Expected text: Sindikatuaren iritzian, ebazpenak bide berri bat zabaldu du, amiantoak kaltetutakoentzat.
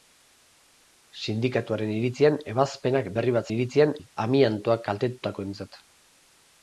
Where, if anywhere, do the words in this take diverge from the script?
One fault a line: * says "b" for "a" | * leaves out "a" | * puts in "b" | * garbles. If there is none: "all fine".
* leaves out "bide"
* says "iritzian" for "zabaldu"